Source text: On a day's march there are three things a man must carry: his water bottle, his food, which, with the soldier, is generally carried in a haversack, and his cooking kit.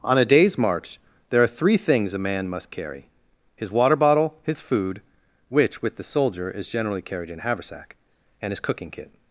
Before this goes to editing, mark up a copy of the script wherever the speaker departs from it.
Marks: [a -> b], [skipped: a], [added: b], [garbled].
On a day's march there are three things a man must carry: his water bottle, his food, which, with the soldier, is generally carried in a haversack, and his cooking kit.